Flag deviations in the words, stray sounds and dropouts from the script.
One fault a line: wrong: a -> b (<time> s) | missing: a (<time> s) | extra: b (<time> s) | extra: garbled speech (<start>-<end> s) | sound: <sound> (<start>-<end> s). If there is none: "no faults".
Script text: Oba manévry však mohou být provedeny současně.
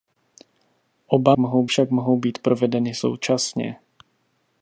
wrong: manévry -> mohou (1.4 s)